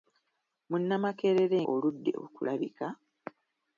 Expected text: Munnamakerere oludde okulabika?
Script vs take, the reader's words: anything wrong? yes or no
no